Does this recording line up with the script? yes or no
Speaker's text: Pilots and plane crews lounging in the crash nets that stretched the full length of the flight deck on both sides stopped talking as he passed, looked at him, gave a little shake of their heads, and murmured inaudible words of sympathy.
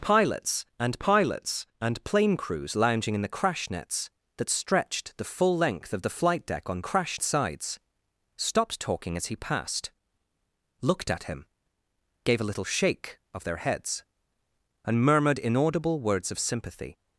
no